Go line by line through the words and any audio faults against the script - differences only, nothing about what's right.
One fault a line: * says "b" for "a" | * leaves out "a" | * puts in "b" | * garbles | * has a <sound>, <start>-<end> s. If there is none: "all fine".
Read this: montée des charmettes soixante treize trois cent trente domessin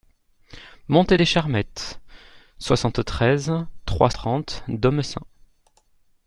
* leaves out "cent"